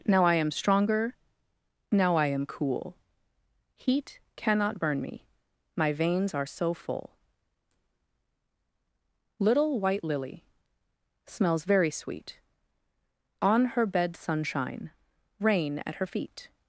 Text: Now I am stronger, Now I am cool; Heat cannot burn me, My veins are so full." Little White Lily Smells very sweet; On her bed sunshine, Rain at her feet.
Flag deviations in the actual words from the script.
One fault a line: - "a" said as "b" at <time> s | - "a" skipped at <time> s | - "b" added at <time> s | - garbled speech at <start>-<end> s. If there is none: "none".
none